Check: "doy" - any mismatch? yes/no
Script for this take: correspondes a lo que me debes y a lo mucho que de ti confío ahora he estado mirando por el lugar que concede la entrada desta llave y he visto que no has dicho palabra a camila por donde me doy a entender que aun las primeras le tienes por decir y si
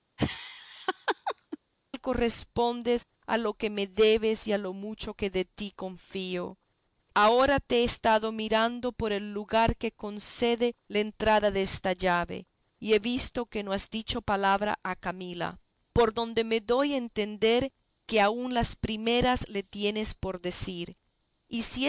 no